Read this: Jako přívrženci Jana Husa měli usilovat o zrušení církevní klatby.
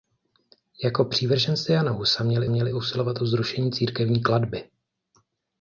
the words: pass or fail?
fail